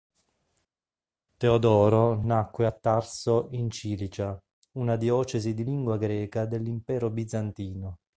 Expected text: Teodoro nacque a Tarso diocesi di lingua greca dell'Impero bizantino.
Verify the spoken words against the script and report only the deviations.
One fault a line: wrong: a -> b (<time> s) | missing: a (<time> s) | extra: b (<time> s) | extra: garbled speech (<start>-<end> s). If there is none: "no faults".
extra: in Cilicia una (3.5 s)